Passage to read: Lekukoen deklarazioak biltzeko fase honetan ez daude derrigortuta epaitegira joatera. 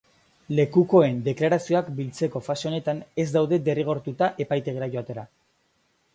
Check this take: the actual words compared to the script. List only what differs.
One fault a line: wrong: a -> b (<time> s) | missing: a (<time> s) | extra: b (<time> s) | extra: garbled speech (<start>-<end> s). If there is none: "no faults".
no faults